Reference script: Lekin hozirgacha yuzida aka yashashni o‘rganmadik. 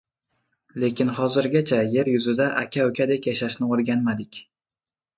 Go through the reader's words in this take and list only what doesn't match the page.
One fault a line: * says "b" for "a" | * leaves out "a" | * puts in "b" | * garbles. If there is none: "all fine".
* puts in "yer"
* puts in "ukadek"